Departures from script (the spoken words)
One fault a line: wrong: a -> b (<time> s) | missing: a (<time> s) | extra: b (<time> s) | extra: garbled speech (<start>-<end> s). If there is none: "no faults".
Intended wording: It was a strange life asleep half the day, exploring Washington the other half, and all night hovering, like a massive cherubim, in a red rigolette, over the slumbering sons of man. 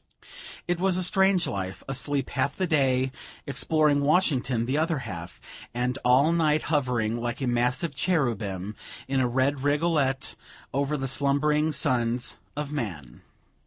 no faults